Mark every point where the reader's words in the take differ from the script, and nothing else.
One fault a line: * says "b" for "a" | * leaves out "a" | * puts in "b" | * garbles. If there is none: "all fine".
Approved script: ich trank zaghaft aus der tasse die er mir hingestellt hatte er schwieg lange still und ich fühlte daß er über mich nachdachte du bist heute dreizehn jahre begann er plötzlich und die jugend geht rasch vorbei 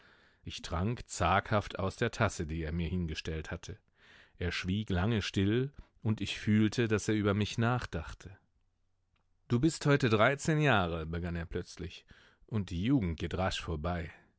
all fine